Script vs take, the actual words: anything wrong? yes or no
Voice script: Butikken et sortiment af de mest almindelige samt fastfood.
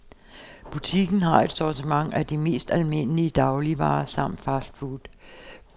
yes